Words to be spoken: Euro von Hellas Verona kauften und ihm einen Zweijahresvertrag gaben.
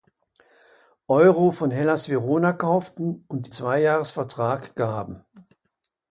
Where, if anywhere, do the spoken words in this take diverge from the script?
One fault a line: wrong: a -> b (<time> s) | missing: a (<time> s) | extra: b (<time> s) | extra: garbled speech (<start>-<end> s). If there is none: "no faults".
missing: ihm einen (3.5 s)